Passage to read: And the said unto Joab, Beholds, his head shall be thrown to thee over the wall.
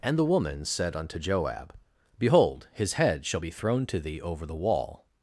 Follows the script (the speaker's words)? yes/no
no